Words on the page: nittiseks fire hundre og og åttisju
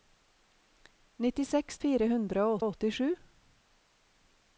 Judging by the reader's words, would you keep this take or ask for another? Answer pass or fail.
pass